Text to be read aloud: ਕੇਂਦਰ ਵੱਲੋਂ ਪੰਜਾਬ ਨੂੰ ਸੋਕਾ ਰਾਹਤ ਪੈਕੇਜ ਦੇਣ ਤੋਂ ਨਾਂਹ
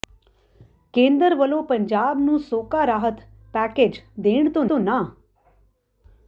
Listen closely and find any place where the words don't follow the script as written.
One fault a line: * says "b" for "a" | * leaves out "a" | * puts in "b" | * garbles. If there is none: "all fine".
* puts in "ਤੋਂ"